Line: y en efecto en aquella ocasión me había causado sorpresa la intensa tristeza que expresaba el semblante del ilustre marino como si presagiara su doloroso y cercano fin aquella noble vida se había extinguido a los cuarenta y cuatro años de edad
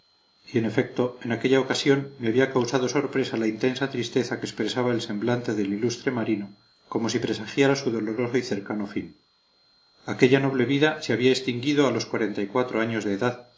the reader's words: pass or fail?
pass